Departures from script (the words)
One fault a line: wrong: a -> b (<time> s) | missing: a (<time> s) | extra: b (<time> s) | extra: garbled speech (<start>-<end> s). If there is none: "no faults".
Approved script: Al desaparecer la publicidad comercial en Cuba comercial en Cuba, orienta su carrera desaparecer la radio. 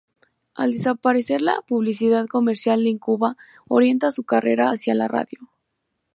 missing: comercial en Cuba (3.4 s)
wrong: desaparecer -> hacia (4.7 s)